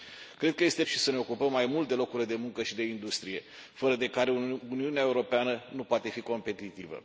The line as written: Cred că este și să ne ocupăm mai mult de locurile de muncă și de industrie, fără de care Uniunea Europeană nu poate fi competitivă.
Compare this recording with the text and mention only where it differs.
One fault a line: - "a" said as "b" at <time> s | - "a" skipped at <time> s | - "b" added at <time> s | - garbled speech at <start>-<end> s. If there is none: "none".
none